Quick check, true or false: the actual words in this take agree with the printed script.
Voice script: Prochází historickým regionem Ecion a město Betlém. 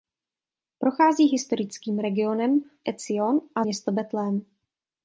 true